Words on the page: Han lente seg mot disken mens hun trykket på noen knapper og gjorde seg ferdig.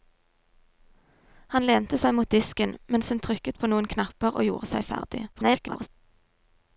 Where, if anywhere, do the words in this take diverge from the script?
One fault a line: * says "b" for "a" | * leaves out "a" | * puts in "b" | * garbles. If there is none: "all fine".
* garbles